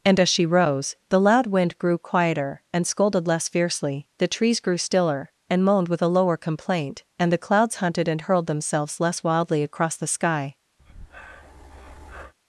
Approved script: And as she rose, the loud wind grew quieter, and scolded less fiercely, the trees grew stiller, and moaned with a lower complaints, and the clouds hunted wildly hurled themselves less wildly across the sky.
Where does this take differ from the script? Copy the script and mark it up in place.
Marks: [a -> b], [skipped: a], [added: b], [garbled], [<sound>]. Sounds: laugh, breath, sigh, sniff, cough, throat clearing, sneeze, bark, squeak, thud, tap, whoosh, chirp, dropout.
And as she rose, the loud wind grew quieter, and scolded less fiercely, the trees grew stiller, and moaned with a lower [complaints, -> complaint] and the clouds hunted [wildly -> and] hurled themselves less wildly across the sky. [breath]